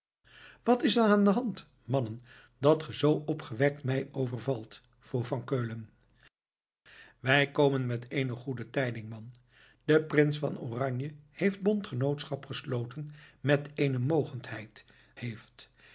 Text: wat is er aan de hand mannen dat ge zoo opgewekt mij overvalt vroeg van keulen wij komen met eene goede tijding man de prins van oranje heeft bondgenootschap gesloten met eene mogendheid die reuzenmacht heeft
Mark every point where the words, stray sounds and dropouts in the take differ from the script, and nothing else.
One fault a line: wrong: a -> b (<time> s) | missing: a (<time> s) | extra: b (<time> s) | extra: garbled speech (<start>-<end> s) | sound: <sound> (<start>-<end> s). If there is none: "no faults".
missing: die reuzenmacht (14.8 s)